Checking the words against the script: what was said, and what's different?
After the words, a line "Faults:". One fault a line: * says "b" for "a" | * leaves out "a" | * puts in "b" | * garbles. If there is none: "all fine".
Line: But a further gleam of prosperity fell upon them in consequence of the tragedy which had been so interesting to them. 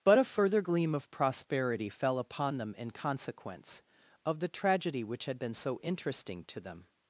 But a further gleam of prosperity fell upon them in consequence of the tragedy which had been so interesting to them.
Faults:
all fine